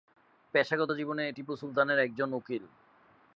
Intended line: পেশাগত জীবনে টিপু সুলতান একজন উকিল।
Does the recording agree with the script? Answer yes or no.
yes